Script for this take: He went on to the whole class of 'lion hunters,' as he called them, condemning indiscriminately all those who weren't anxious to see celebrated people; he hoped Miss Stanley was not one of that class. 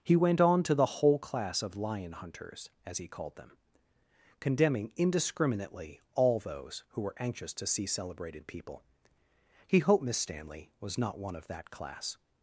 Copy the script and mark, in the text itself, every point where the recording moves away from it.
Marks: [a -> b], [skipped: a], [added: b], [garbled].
He went on to the whole class of 'lion hunters,' as he called them, condemning indiscriminately all those who [weren't -> were] anxious to see celebrated people; he hoped Miss Stanley was not one of that class.